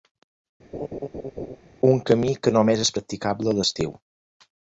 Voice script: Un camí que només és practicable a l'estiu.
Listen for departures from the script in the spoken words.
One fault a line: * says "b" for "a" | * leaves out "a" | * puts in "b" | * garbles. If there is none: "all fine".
all fine